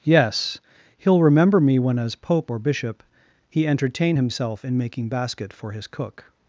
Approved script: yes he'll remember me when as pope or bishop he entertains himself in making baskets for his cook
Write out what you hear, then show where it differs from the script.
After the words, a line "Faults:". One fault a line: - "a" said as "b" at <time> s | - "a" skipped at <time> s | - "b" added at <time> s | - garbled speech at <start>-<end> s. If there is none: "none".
yes he'll remember me when as pope or bishop he entertain himself in making basket for his cook
Faults:
- "entertains" said as "entertain" at 3.7 s
- "baskets" said as "basket" at 5.1 s